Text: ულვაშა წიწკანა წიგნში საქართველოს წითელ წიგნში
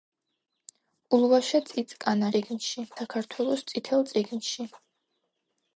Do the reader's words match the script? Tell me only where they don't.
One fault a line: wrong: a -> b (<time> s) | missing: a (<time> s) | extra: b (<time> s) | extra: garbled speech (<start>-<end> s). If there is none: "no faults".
no faults